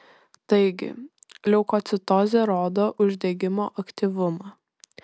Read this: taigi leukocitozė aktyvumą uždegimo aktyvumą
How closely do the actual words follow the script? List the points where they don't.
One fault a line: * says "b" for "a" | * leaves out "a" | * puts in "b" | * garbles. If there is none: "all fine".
* says "rodo" for "aktyvumą"